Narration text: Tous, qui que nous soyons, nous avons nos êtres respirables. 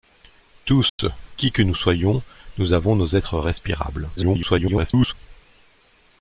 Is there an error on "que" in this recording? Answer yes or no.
no